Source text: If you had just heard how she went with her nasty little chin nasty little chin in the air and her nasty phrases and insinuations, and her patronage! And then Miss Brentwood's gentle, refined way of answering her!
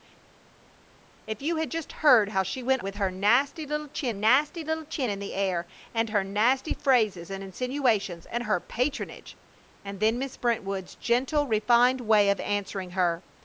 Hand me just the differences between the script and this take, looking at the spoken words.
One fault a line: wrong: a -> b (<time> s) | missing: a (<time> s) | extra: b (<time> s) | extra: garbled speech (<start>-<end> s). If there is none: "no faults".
no faults